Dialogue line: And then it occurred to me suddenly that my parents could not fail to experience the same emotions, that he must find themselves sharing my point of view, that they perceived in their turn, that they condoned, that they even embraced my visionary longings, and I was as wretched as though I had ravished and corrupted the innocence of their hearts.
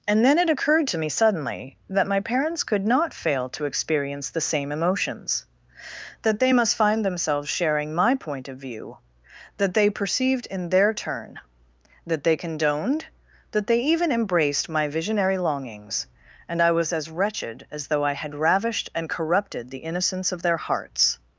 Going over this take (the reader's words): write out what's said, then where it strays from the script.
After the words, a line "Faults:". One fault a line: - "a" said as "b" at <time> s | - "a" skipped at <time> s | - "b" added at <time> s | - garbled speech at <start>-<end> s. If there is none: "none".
And then it occurred to me suddenly that my parents could not fail to experience the same emotions, that they must find themselves sharing my point of view, that they perceived in their turn, that they condoned, that they even embraced my visionary longings, and I was as wretched as though I had ravished and corrupted the innocence of their hearts.
Faults:
- "he" said as "they" at 6.4 s